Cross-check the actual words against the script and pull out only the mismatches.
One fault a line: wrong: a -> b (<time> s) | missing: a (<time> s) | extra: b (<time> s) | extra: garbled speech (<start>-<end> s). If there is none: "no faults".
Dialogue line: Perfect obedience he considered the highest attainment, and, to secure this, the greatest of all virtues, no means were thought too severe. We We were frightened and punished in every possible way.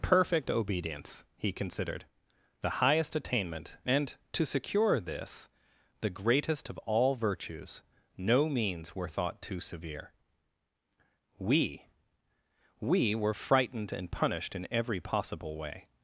no faults